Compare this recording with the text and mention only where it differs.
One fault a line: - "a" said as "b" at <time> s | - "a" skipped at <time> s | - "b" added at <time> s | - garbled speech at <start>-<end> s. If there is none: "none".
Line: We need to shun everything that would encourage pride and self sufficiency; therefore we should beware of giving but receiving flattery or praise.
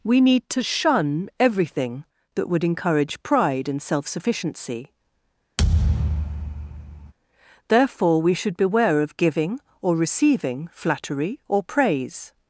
- "but" said as "or" at 9.8 s